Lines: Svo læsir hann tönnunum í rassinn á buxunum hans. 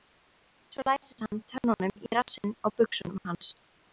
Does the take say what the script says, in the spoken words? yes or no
yes